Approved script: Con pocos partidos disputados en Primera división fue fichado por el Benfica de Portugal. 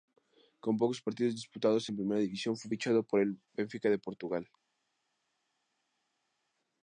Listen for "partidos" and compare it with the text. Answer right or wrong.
right